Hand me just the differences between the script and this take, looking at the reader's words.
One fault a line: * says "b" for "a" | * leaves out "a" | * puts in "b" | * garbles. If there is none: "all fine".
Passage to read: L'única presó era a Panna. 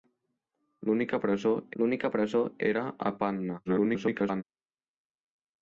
* puts in "l'única presó"
* garbles